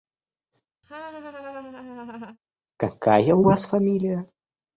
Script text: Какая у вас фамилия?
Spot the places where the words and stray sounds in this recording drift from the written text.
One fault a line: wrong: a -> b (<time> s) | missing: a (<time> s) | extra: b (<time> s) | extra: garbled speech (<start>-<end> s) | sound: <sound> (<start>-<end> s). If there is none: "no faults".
sound: laugh (0.8-2.4 s)